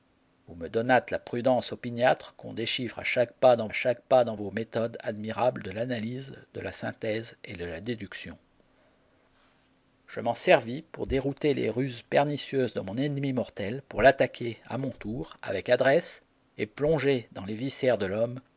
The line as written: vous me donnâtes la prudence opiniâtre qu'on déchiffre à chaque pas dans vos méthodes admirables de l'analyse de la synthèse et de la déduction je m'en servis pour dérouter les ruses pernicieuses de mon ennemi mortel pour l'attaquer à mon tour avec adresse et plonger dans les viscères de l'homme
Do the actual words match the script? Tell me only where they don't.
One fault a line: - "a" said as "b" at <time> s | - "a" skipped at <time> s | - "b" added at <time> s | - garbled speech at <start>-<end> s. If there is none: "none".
- "chaque pas dans" added at 3.7 s